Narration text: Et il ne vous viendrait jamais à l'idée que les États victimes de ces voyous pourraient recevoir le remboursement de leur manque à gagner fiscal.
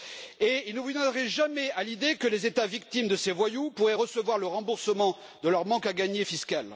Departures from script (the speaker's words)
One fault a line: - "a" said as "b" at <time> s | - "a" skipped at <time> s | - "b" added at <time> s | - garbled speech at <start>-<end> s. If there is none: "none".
none